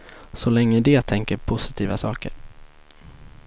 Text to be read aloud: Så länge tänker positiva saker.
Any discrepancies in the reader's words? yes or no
yes